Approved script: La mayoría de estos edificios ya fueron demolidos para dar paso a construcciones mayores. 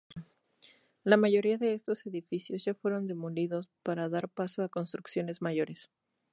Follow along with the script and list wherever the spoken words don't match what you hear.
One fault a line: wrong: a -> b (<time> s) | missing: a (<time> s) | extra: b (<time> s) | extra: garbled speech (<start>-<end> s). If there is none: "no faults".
no faults